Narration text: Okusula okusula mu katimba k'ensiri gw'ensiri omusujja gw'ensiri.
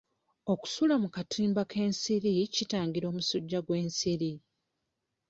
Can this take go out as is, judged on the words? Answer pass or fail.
fail